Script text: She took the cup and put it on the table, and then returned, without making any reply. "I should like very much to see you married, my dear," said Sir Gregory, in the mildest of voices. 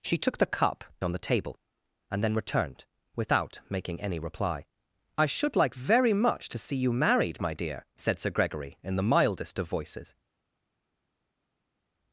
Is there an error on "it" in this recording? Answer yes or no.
yes